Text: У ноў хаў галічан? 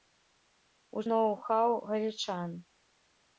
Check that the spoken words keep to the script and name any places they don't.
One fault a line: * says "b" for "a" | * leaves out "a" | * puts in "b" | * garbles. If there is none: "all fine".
all fine